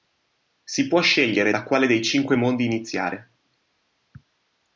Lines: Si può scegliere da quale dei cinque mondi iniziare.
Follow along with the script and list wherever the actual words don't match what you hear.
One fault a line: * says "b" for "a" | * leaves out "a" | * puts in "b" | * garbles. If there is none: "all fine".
all fine